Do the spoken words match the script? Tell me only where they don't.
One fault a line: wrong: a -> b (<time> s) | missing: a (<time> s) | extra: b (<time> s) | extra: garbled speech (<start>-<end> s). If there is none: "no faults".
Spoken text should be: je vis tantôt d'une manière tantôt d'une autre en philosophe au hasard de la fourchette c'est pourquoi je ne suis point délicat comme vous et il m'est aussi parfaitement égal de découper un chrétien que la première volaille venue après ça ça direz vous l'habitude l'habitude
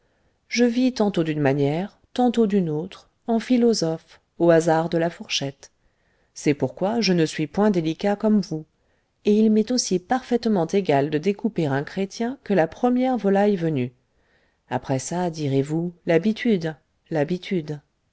missing: ça (15.3 s)